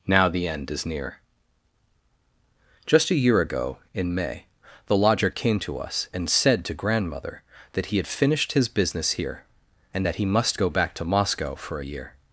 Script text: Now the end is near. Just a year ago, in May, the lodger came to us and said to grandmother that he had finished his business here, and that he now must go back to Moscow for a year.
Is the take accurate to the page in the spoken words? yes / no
no